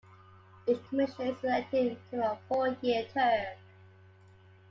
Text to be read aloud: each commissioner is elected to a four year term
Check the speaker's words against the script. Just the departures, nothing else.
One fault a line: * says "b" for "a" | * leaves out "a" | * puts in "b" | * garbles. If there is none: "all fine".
all fine